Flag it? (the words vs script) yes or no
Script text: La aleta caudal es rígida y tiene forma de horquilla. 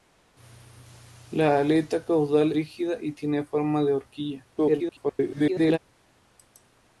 yes